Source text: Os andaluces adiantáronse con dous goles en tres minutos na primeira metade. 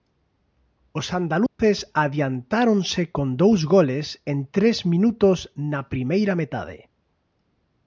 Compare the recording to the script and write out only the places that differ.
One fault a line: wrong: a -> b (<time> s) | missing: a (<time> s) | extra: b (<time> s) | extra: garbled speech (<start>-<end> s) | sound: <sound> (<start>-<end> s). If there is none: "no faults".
sound: dropout (1.5-1.6 s)